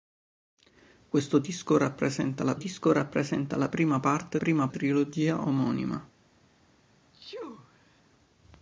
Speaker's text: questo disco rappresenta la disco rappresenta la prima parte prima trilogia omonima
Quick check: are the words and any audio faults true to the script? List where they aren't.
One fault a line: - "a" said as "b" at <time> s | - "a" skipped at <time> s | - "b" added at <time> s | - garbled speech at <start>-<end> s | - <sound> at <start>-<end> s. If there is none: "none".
- sneeze at 7.1-8.0 s